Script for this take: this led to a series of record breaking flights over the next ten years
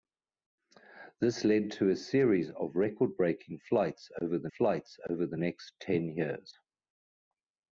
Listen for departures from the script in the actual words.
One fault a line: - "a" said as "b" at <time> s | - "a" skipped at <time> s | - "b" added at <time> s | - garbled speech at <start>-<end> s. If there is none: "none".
- "flights over the" added at 4.5 s